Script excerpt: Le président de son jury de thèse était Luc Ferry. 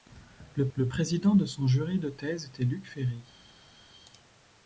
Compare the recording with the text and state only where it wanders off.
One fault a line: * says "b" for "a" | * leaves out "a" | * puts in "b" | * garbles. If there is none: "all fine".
* puts in "le"